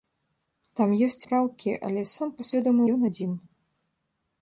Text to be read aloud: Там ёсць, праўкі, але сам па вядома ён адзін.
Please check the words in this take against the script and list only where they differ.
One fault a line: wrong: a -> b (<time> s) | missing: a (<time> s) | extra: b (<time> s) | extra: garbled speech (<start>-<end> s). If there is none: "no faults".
no faults